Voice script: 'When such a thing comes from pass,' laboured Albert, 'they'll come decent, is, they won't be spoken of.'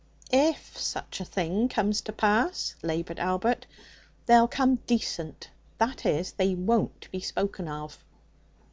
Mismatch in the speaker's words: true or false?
true